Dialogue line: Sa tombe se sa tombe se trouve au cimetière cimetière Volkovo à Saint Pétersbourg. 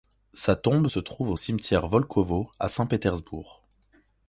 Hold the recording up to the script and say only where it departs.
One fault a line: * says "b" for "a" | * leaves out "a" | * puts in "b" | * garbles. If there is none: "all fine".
* leaves out "sa tombe se"
* leaves out "cimetière"